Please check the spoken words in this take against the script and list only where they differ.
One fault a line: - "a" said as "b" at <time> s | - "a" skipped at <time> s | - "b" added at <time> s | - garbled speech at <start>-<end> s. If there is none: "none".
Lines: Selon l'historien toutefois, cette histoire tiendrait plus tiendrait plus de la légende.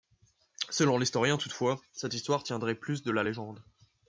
- "tiendrait plus" skipped at 3.0 s